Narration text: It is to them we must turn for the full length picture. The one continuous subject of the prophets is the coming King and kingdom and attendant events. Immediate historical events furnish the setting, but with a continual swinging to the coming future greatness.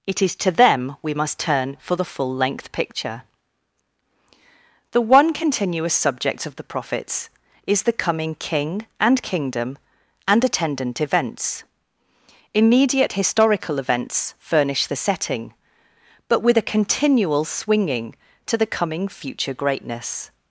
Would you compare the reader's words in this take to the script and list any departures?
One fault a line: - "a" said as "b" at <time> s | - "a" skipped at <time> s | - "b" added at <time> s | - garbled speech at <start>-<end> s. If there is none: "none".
none